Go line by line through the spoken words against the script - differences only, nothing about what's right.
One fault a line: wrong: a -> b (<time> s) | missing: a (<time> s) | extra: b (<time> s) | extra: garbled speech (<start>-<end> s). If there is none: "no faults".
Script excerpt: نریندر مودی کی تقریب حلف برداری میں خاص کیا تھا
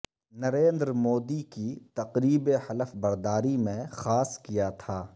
no faults